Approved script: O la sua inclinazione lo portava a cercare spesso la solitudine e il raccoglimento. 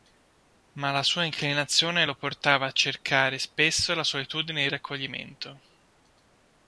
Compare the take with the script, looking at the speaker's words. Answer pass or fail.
fail